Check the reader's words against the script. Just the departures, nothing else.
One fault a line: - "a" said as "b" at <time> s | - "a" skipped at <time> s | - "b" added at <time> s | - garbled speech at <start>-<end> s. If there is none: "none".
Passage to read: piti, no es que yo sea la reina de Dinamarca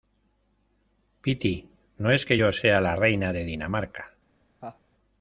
none